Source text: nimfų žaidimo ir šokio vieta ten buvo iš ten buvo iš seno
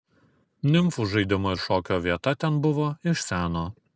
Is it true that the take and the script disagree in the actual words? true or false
true